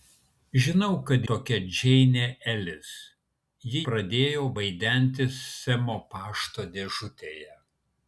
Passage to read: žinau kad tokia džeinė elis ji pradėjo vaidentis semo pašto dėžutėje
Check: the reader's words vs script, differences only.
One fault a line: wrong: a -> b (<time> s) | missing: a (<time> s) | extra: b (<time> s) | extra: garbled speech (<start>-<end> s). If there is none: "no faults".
no faults